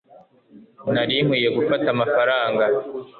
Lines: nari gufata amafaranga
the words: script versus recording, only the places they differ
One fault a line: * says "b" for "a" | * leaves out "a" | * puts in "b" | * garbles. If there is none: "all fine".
* puts in "nkwiye"